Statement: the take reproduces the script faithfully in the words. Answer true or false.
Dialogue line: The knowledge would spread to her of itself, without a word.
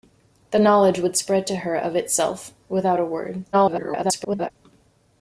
false